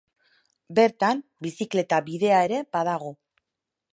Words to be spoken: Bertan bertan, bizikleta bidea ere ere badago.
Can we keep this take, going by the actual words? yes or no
no